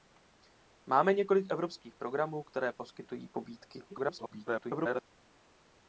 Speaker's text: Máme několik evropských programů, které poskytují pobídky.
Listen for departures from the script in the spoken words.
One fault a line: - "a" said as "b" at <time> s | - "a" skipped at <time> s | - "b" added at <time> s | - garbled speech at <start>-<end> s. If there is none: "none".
- garbled speech at 3.9-5.0 s